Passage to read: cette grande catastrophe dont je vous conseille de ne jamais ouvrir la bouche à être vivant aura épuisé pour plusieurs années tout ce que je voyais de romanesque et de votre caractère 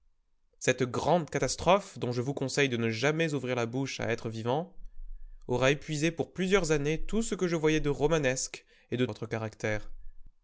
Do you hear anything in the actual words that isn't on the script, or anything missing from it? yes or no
no